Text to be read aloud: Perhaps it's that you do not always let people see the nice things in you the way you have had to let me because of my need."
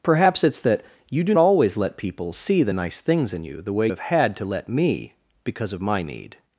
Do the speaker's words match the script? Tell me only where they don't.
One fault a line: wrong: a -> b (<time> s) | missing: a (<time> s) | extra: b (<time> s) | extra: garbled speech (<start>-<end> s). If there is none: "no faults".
missing: not (1.4 s)
missing: you (3.9 s)